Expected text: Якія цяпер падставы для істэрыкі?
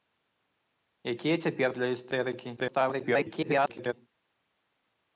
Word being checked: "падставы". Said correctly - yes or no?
no